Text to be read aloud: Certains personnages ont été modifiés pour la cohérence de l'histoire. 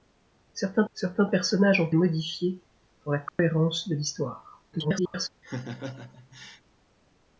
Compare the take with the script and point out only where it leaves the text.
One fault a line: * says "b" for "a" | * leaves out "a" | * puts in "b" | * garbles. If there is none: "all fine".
* puts in "certains"
* leaves out "été"
* garbles